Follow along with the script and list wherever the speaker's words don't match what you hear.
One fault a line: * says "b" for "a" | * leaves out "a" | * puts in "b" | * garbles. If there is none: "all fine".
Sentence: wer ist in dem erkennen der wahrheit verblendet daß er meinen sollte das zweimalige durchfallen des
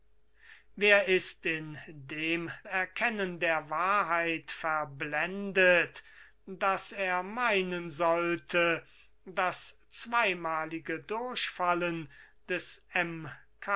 all fine